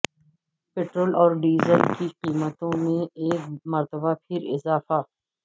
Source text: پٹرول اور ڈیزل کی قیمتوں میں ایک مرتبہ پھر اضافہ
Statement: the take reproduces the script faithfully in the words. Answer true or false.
true